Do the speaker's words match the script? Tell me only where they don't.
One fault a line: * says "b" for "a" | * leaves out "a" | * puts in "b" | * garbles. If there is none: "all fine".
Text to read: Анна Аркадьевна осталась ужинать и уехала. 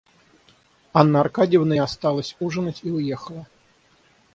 all fine